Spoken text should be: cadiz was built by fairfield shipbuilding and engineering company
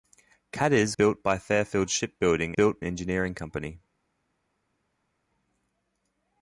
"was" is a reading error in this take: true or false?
true